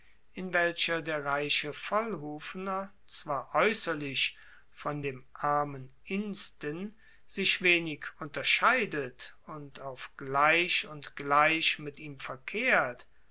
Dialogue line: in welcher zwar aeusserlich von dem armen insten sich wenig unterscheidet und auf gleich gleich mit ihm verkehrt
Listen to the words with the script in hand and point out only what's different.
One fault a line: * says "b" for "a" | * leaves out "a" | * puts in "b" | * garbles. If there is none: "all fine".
* puts in "der reiche vollhufener"
* puts in "und"